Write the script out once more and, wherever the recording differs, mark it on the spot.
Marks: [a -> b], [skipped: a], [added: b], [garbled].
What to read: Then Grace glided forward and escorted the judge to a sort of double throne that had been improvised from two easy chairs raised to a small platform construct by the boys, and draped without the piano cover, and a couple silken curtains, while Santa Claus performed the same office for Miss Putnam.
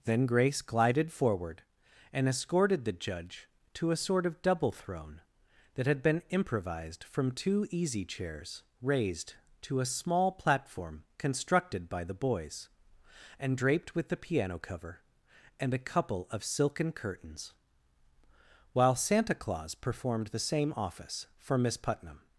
Then Grace glided forward and escorted the judge to a sort of double throne that had been improvised from two easy chairs raised to a small platform [construct -> constructed] by the boys, and draped [without -> with] the piano cover, and a couple [added: of] silken curtains, while Santa Claus performed the same office for Miss Putnam.